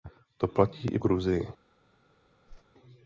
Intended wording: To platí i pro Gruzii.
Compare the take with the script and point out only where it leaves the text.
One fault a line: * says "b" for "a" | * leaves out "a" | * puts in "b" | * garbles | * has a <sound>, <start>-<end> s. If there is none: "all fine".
* leaves out "pro"
* has a whoosh, 2.5-2.6 s